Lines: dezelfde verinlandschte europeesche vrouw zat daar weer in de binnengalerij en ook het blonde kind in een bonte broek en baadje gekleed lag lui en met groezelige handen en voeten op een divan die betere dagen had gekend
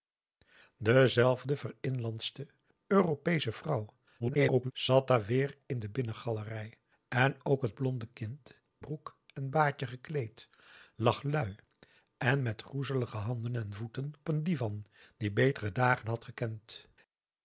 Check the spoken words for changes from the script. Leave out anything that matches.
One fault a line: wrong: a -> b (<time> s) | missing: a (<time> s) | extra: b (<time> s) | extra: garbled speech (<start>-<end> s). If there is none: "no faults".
extra: garbled speech (4.2-4.7 s)
missing: in een bonte (8.6 s)
missing: op (14.1 s)